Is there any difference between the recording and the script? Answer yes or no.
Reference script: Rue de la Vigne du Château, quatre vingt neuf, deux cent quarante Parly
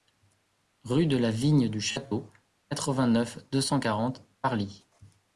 no